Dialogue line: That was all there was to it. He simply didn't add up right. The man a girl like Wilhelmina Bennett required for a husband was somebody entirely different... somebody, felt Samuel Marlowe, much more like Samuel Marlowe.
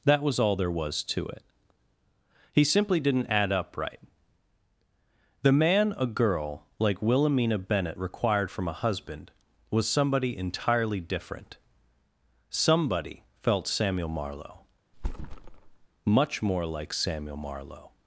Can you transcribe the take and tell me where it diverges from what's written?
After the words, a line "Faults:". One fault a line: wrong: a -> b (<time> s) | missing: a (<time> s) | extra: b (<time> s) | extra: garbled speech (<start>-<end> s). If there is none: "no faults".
That was all there was to it. He simply didn't add up right. The man a girl like Wilhelmina Bennett required from a husband was somebody entirely different... somebody, felt Samuel Marlowe, much more like Samuel Marlowe.
Faults:
wrong: for -> from (8.5 s)